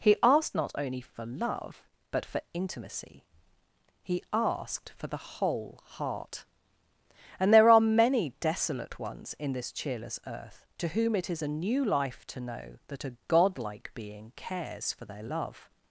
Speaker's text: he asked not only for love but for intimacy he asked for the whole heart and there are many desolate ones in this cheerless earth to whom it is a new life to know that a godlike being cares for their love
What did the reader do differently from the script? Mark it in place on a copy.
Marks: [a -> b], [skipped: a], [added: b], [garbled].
he asked not only for love but for intimacy he asked for the whole heart and there are many desolate ones in this cheerless earth to whom it is a new life to know that a godlike being cares for their love